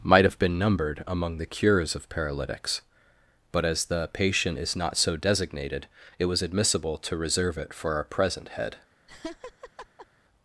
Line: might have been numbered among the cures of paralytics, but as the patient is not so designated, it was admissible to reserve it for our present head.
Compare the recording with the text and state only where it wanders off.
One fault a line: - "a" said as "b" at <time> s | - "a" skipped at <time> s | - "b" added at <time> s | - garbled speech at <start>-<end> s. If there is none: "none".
none